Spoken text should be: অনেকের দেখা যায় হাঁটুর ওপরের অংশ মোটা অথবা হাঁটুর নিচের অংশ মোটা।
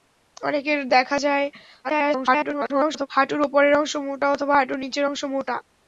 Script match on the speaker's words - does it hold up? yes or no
no